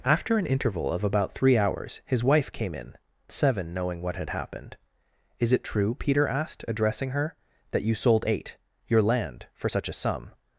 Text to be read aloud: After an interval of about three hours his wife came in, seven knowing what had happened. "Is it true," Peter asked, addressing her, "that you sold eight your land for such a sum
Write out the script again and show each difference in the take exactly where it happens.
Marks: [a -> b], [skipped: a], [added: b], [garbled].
After an interval of about three hours his wife came in, seven knowing what had happened. "Is it true," Peter asked, addressing her, "that you sold eight your land for such a sum